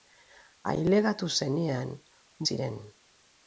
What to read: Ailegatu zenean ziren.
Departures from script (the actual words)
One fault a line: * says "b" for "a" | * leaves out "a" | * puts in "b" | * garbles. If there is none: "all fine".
all fine